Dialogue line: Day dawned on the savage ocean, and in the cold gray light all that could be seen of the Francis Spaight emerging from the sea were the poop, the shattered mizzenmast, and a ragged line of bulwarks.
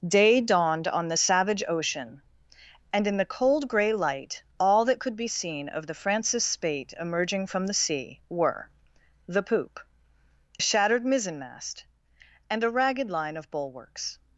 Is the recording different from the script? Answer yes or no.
yes